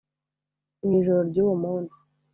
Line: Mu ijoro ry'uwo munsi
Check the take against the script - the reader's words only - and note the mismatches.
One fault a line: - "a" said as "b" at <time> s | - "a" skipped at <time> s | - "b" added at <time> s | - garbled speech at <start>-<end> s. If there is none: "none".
none